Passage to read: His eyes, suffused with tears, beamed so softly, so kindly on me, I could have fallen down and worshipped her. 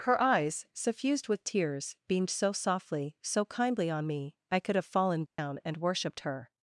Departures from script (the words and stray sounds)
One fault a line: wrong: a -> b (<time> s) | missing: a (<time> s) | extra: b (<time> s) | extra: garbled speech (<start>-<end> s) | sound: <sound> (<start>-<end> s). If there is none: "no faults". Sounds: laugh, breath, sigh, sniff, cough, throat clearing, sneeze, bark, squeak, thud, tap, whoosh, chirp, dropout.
wrong: His -> Her (0.0 s)
sound: dropout (5.3-5.4 s)